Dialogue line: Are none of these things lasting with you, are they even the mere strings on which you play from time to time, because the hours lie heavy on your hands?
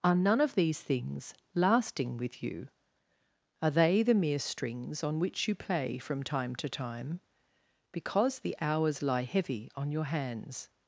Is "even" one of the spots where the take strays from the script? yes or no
yes